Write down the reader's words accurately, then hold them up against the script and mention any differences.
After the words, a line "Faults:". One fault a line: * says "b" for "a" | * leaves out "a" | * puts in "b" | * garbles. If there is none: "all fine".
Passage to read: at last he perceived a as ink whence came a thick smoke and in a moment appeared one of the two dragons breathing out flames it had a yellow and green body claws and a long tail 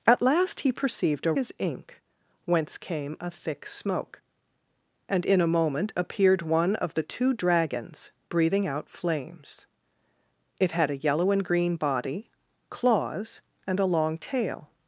at last he perceived a as ink whence came a thick smoke and in a moment appeared one of the two dragons breathing out flames it had a yellow and green body claws and a long tail
Faults:
all fine